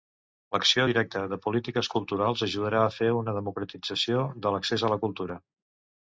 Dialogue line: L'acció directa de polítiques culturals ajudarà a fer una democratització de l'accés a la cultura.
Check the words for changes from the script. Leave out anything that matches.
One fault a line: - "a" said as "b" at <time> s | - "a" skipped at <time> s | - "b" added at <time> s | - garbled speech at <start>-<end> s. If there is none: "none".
none